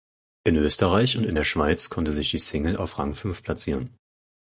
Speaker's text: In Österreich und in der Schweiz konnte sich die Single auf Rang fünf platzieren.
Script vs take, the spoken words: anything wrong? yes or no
no